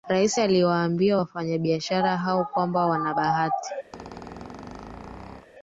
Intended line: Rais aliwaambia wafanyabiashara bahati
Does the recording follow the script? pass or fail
fail